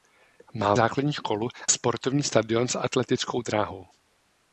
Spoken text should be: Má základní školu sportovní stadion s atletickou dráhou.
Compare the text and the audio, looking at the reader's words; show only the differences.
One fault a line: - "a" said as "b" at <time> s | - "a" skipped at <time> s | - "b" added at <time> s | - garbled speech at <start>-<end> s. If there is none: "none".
none